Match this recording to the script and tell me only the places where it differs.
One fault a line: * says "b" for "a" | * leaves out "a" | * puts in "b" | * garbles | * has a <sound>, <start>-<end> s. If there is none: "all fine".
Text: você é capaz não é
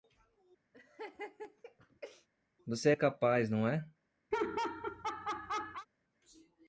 * has a laugh, 0.7-2.3 s
* has a laugh, 4.3-5.9 s